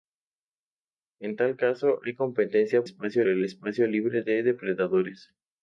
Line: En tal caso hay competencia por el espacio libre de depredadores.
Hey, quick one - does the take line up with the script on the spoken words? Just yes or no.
no